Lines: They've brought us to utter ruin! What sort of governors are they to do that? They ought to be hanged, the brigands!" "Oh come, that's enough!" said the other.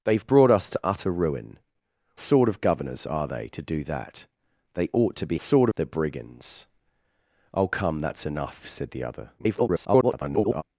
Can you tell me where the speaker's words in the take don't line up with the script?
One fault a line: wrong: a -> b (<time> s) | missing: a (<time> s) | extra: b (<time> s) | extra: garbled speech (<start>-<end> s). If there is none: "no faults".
missing: What (1.6 s)
wrong: hanged -> sort (5.4 s)
extra: garbled speech (9.4-10.6 s)